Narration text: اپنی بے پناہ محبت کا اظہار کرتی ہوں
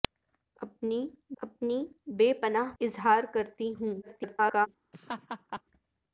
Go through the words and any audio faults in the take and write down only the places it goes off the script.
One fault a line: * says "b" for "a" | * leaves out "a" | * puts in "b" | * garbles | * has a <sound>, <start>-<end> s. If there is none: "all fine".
* puts in "اپنی"
* leaves out "محبت کا"
* garbles
* has a laugh, 4.9-5.6 s